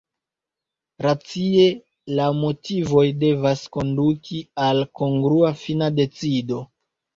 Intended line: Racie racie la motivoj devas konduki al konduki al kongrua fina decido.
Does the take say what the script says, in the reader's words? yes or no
no